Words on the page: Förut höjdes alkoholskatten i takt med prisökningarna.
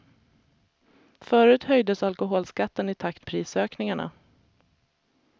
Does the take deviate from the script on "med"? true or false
true